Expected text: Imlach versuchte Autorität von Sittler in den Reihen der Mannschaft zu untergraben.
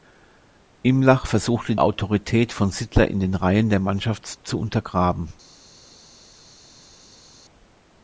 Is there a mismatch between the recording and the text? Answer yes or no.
no